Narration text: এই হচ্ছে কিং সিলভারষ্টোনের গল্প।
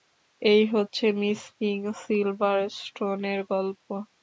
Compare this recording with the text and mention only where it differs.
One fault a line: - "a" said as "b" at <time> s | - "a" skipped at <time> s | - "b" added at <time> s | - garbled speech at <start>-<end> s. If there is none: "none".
- "মিস" added at 1.2 s